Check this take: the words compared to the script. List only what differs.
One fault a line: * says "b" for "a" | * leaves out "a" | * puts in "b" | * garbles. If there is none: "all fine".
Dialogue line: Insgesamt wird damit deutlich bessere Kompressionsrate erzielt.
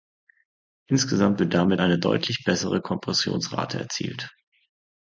* puts in "eine"